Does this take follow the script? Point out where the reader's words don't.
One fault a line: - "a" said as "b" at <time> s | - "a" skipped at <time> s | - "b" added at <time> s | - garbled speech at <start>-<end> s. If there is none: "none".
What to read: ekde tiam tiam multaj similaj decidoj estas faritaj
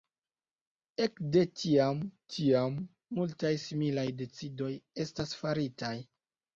none